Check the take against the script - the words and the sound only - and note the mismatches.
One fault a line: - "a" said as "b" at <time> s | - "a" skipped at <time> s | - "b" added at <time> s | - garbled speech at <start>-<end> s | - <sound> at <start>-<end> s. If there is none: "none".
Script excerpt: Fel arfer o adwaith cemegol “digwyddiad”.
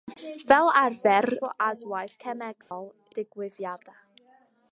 - dropout at 2.6-2.7 s